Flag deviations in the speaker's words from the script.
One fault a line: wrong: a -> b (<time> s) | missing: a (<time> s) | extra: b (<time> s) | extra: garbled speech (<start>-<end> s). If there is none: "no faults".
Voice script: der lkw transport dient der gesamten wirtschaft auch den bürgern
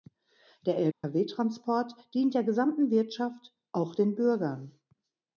no faults